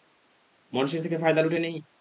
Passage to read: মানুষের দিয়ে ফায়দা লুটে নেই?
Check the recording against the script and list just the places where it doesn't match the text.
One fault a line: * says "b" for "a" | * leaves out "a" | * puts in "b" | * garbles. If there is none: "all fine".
* says "থেকে" for "দিয়ে"